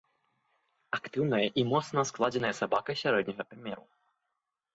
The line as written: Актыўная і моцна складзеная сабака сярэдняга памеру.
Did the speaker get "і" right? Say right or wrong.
right